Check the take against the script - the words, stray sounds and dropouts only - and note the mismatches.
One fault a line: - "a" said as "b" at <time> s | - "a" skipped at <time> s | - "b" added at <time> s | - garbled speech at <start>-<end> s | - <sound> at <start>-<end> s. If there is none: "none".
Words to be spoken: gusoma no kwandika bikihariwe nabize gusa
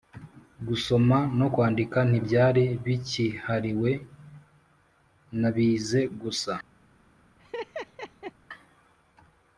- "ntibyari" added at 2.1 s
- laugh at 7.4-8.3 s